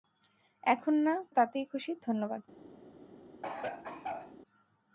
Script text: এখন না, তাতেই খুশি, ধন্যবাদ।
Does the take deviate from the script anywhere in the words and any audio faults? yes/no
yes